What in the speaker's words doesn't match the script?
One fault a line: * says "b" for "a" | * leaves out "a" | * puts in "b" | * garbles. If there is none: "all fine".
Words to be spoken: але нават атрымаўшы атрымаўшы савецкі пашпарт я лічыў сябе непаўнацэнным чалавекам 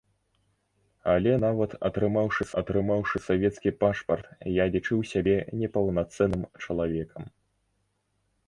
all fine